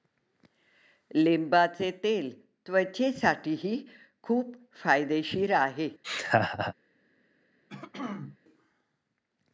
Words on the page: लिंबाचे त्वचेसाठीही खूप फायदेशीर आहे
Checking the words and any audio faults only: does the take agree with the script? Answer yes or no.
no